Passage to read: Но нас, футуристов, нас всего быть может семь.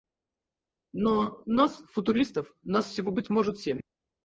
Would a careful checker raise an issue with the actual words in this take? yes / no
no